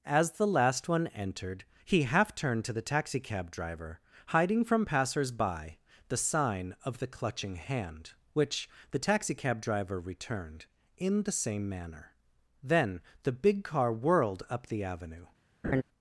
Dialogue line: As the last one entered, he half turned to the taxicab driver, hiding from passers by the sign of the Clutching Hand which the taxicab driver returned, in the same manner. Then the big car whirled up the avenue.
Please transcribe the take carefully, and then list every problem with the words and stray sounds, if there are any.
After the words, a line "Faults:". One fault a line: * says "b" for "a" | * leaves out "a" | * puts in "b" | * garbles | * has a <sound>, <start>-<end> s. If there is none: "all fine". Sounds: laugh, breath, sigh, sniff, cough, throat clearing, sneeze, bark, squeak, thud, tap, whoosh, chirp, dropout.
As the last one entered, he half turned to the taxicab driver, hiding from passers by the sign of the Clutching Hand which the taxicab driver returned, in the same manner. Then the big car whirled up the avenue.
Faults:
* has a laugh, 15.6-15.8 s